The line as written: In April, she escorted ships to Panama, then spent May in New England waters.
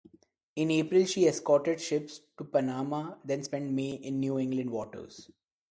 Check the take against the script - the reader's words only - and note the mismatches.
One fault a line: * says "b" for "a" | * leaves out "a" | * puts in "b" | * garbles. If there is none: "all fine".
all fine